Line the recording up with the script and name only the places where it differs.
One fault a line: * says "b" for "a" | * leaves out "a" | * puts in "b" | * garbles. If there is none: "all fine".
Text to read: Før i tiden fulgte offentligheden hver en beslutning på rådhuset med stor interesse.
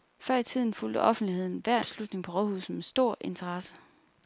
* leaves out "en"